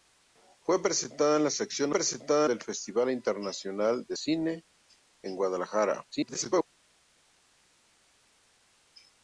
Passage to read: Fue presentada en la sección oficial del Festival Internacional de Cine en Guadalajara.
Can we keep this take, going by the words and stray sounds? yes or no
no